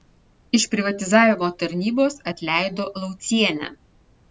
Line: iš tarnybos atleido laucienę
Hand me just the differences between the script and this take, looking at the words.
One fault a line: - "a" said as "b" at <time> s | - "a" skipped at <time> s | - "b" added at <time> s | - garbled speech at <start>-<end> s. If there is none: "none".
- "privatizavimo" added at 0.7 s